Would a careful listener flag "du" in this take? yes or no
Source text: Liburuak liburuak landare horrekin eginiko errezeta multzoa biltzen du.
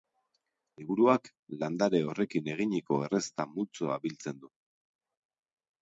no